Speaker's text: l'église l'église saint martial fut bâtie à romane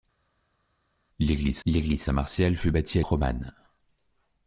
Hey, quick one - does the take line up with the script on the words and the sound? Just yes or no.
yes